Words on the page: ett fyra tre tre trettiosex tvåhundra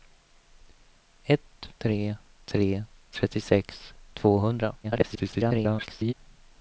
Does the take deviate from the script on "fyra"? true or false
true